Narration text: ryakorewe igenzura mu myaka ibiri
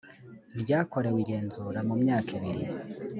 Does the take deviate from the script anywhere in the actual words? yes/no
no